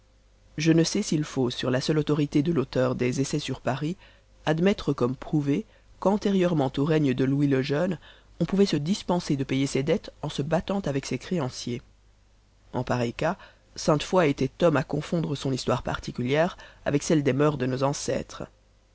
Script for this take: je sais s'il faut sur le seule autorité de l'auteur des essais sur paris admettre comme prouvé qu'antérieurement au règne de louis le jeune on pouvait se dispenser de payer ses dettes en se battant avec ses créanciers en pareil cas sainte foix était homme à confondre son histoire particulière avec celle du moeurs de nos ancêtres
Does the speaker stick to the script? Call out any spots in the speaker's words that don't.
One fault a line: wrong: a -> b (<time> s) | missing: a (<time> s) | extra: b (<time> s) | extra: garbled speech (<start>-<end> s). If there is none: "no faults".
extra: ne (0.7 s)
wrong: le -> la (1.7 s)
wrong: du -> des (17.2 s)